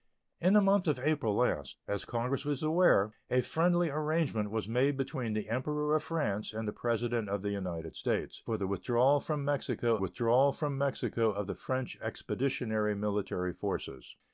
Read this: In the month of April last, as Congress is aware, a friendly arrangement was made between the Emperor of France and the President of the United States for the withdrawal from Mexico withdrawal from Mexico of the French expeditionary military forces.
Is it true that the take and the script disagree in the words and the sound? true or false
false